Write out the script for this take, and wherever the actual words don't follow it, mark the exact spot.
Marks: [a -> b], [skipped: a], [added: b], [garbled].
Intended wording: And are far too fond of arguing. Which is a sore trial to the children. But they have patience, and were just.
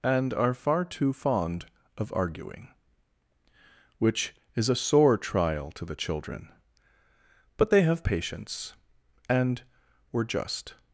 And are far too fond of arguing. Which is a sore trial to the children. But they have patience, and were just.